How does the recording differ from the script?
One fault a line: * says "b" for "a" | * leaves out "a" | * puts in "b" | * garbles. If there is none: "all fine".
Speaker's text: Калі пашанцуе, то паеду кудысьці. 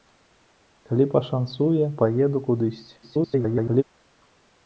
* leaves out "то"
* garbles